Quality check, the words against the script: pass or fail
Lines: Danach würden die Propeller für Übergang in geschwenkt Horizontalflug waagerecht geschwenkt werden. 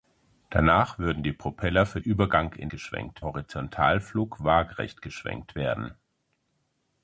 pass